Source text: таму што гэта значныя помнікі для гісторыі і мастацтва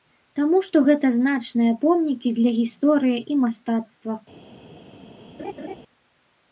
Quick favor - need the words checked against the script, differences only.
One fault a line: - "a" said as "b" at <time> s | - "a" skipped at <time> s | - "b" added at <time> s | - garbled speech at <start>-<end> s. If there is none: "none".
none